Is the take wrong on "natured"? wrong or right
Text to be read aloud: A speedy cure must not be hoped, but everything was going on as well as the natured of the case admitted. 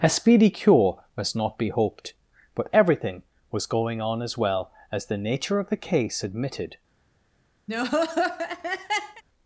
wrong